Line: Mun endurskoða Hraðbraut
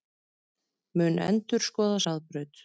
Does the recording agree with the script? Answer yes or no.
yes